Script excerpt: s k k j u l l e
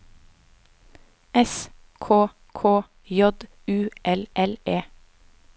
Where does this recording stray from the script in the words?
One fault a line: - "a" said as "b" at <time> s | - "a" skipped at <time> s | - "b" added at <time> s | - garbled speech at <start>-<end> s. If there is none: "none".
none